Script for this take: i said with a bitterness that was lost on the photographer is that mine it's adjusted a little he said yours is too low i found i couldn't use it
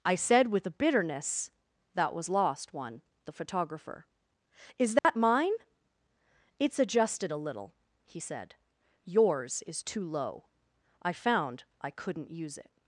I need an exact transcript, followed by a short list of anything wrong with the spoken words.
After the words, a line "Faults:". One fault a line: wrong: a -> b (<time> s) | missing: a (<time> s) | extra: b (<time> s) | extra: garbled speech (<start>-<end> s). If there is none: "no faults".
i said with a bitterness that was lost one the photographer is that mine it's adjusted a little he said yours is too low i found i couldn't use it
Faults:
wrong: on -> one (2.7 s)